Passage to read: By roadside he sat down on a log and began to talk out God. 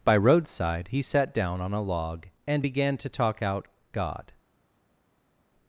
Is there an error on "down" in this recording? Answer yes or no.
no